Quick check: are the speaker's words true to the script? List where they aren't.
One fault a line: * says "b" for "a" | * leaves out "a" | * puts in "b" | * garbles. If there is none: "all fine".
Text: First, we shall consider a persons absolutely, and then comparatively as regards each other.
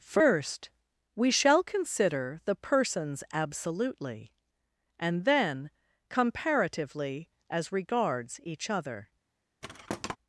* says "the" for "a"